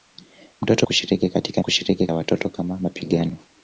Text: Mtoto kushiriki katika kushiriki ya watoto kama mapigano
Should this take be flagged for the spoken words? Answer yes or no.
no